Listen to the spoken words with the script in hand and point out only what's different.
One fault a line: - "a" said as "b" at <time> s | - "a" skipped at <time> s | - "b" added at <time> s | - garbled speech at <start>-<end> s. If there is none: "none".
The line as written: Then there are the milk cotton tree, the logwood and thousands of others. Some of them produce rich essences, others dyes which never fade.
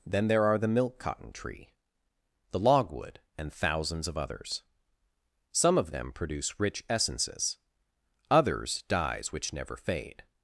none